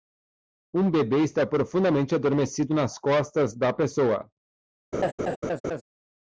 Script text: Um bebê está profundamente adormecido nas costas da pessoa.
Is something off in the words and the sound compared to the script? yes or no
yes